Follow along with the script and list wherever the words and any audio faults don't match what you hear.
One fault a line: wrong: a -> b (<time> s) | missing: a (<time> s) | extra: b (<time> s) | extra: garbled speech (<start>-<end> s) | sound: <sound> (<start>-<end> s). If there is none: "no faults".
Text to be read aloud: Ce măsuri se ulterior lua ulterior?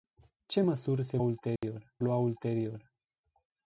sound: dropout (1.6-1.6 s)